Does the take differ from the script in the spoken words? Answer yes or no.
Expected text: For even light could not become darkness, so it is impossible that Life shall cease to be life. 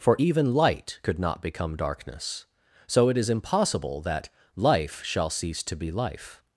no